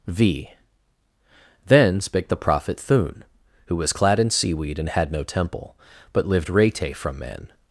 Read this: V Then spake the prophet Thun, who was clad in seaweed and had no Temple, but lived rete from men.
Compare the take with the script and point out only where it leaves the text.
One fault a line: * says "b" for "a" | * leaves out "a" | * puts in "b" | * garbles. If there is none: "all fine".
all fine